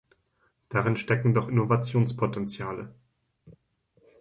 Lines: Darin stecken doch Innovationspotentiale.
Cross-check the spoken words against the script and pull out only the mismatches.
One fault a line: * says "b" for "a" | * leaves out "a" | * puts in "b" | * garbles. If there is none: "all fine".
all fine